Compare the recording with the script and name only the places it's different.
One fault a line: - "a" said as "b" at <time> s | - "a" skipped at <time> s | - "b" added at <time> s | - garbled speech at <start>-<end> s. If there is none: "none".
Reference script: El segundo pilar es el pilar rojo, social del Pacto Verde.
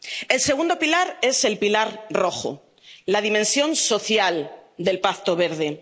- "la dimensión" added at 3.0 s